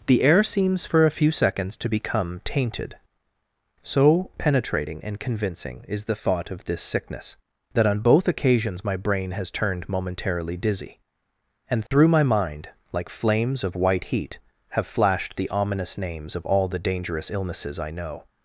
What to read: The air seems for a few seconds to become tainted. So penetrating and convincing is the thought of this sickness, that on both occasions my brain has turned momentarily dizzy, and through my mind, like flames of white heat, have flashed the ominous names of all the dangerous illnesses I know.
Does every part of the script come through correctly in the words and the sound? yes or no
no